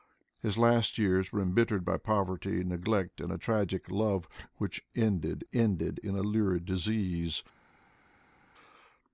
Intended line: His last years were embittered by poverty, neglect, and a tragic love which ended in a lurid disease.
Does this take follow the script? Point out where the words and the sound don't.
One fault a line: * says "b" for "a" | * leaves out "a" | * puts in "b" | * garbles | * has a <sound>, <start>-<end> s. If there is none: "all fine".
* puts in "ended"